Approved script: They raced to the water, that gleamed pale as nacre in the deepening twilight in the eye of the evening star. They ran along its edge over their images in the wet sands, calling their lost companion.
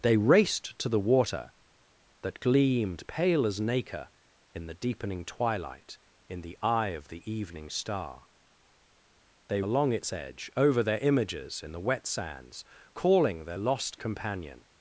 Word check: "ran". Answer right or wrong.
wrong